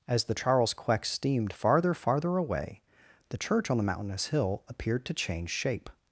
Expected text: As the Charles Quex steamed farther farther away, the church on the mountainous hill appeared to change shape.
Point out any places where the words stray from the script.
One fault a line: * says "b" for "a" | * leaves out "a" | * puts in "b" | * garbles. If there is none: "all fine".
all fine